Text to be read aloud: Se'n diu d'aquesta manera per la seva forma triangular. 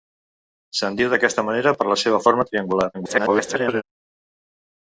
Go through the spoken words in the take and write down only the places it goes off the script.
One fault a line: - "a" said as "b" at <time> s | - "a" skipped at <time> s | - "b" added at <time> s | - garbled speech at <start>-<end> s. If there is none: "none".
- garbled speech at 2.9-3.8 s